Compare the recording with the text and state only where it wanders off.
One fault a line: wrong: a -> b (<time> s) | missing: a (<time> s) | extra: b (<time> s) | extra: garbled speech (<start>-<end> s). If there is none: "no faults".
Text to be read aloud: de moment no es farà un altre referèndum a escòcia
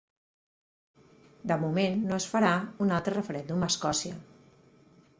no faults